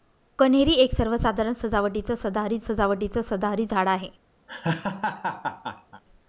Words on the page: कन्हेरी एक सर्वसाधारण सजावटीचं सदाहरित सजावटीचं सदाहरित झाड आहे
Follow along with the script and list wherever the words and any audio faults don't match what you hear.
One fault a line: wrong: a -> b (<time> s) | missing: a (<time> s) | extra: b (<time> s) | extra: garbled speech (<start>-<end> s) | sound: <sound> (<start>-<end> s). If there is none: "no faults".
sound: laugh (4.5-6.0 s)